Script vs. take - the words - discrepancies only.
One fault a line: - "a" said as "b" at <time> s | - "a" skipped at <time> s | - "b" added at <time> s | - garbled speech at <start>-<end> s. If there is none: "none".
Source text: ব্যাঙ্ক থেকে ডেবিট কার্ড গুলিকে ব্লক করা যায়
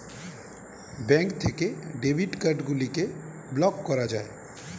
none